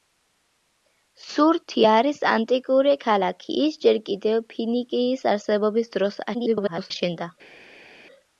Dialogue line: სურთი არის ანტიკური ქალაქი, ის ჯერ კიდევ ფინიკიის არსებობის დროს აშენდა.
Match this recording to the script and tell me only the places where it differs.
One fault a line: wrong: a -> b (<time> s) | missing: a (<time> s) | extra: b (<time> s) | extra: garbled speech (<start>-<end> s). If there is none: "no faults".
extra: garbled speech (6.3-6.9 s)